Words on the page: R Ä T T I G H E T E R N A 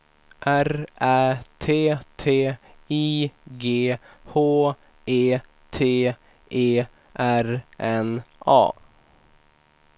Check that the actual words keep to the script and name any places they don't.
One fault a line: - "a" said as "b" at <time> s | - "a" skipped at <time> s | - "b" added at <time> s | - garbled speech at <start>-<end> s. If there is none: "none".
none